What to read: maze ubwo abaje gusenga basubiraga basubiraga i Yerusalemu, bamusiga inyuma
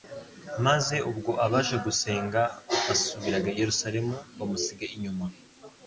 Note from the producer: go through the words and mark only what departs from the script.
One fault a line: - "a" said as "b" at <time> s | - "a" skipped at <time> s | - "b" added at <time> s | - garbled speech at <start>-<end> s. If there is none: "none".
- "basubiraga" skipped at 3.5 s